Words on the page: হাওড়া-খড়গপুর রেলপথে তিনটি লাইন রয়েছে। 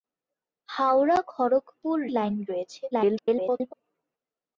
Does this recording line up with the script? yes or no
no